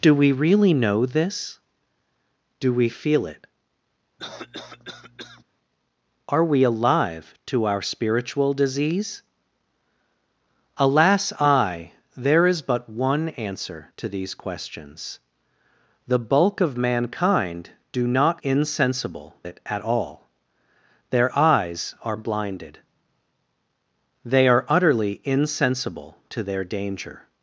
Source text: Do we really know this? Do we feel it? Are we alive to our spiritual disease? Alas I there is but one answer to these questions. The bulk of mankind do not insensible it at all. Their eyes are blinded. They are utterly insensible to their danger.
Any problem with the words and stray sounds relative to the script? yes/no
yes